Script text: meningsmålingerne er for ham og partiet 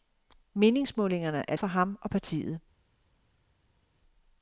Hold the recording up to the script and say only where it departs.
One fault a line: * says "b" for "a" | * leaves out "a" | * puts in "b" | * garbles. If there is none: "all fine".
all fine